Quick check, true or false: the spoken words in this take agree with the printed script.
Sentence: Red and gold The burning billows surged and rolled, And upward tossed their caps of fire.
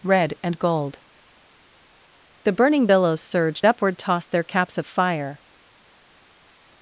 false